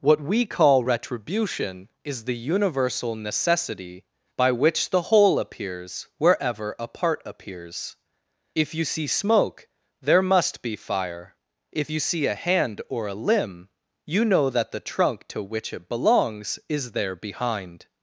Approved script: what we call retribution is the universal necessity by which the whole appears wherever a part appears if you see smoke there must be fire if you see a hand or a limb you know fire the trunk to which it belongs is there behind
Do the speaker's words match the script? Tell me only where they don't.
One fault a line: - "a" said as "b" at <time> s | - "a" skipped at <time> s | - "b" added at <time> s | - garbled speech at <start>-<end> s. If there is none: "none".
- "fire" said as "that" at 14.5 s